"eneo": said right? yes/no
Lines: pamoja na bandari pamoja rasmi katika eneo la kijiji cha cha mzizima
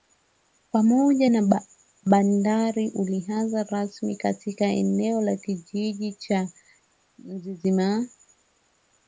yes